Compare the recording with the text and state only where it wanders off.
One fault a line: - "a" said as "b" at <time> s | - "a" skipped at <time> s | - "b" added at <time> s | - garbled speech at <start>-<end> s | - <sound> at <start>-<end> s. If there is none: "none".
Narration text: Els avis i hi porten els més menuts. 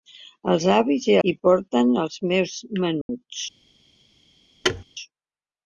- dropout at 3.0-3.1 s
- thud at 4.6-4.8 s